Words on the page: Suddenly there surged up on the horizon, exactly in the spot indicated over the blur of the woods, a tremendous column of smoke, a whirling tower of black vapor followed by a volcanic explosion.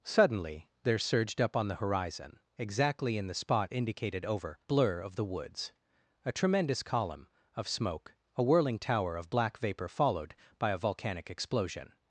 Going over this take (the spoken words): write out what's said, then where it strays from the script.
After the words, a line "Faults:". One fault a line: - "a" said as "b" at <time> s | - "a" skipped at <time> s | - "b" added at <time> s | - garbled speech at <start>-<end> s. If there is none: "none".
Suddenly there surged up on the horizon, exactly in the spot indicated over blur of the woods, a tremendous column of smoke, a whirling tower of black vapor followed by a volcanic explosion.
Faults:
- "the" skipped at 4.6 s